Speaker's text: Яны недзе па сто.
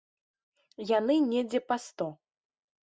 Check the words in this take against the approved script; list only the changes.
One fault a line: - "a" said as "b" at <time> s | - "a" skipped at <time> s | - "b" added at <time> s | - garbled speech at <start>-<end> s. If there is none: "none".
none